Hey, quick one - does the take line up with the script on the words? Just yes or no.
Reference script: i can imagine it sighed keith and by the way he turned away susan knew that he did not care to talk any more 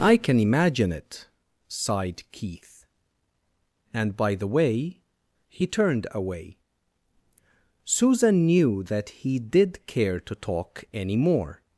no